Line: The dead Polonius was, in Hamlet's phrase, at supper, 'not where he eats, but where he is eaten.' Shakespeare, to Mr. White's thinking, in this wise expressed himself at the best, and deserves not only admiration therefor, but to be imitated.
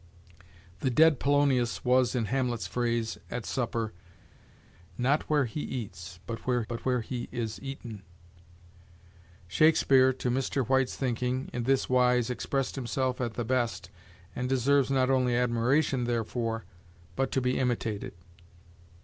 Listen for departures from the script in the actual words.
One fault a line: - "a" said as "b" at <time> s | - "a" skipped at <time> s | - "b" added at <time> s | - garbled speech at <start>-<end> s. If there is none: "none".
- "but where" added at 6.7 s